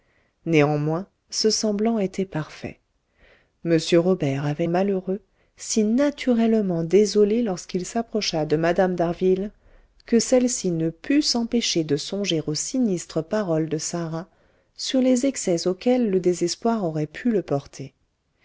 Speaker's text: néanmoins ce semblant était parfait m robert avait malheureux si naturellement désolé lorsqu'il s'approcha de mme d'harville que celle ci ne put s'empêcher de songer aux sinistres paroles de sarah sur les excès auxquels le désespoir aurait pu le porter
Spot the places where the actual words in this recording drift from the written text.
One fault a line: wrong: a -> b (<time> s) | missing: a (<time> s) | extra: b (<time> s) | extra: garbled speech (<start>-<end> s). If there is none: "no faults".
no faults